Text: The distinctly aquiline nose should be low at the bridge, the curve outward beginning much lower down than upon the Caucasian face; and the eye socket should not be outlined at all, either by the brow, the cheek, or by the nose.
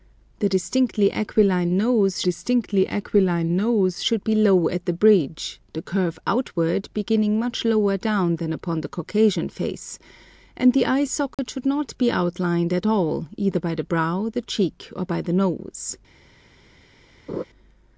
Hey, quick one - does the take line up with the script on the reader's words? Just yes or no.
no